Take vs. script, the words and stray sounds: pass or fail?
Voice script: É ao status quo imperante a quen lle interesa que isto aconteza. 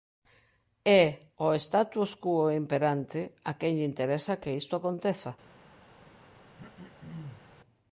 fail